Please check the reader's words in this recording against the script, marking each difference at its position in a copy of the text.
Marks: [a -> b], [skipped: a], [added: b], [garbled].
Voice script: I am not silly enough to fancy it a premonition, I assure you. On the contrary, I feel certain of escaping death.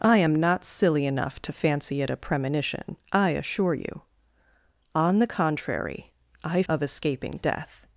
I am not silly enough to fancy it a premonition, I assure you. On the contrary, I [skipped: feel certain] of escaping death.